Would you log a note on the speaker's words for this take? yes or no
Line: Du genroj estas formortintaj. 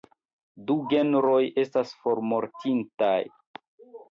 no